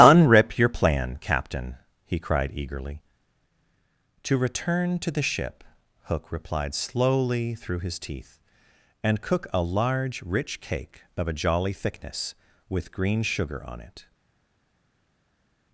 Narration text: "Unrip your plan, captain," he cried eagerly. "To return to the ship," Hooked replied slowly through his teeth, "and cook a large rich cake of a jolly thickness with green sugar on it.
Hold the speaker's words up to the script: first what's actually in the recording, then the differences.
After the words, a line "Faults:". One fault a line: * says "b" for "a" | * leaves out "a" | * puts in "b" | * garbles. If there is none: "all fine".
"Unrip your plan, captain," he cried eagerly. "To return to the ship," Hook replied slowly through his teeth, "and cook a large rich cake of a jolly thickness with green sugar on it.
Faults:
* says "Hook" for "Hooked"